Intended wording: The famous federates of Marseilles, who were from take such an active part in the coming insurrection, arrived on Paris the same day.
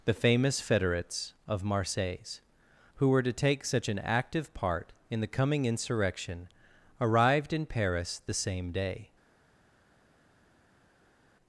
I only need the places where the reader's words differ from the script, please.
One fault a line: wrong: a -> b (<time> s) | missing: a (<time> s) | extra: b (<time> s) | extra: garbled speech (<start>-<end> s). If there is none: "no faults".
wrong: from -> to (3.2 s)
wrong: on -> in (7.5 s)